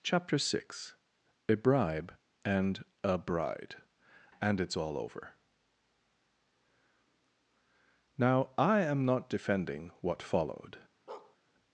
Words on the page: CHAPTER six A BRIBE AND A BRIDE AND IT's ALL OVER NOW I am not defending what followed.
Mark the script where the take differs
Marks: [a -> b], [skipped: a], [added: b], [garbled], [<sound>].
CHAPTER six A BRIBE AND A BRIDE AND IT's ALL OVER NOW I am not defending what followed. [bark]